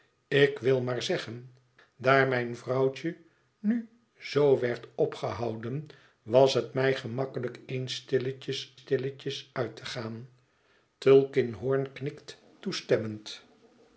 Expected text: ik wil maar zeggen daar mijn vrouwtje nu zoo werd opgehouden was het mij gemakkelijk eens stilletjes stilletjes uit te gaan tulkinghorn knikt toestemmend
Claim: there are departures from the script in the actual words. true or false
false